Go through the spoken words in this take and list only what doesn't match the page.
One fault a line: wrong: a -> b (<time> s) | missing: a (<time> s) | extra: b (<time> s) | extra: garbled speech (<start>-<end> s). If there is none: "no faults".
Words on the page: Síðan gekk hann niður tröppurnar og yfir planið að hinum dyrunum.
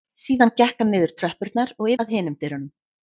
missing: yfir planið (1.9 s)